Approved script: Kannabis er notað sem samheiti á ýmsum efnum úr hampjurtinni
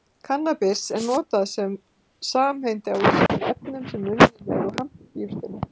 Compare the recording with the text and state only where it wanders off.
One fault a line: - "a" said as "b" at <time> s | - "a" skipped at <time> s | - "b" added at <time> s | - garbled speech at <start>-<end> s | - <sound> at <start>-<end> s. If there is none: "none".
- dropout at 3.3-3.3 s
- "sem unnin eru" added at 3.9 s